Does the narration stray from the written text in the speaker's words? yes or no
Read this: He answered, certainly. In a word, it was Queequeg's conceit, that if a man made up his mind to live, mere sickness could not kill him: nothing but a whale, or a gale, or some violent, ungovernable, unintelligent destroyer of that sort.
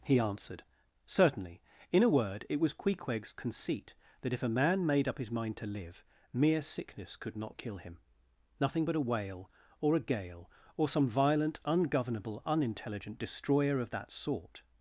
no